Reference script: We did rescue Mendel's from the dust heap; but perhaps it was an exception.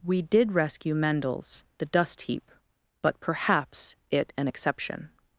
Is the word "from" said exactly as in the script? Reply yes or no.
no